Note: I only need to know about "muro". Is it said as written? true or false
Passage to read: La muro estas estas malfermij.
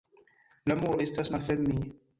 true